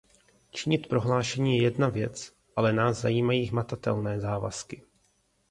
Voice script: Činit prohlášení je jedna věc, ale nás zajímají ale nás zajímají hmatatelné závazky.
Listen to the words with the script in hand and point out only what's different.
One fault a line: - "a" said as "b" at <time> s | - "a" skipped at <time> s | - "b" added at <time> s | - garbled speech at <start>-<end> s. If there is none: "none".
- "ale nás zajímají" skipped at 3.5 s